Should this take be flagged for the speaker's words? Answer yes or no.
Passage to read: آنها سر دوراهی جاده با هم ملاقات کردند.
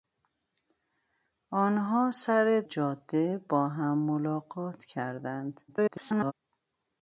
yes